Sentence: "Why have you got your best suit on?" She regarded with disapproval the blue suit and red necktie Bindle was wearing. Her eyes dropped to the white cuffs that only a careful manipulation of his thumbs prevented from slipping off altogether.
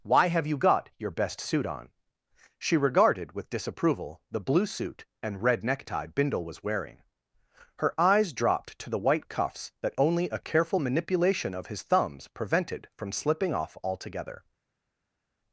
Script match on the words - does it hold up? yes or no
yes